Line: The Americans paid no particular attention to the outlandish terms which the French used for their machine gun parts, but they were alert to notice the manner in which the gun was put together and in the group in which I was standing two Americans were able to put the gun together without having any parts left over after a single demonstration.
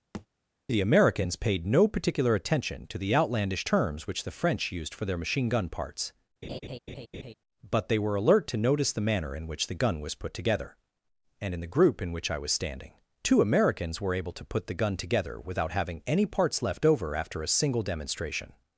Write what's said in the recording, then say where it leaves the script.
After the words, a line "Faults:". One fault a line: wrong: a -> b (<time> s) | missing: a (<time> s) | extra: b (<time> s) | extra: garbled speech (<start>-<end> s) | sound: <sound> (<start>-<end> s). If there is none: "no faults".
The Americans paid no particular attention to the outlandish terms which the French used for their machine gun parts, but they were alert to notice the manner in which the gun was put together and in the group in which I was standing two Americans were able to put the gun together without having any parts left over after a single demonstration.
Faults:
sound: thud (0.1-0.3 s)
sound: laugh (6.4-7.3 s)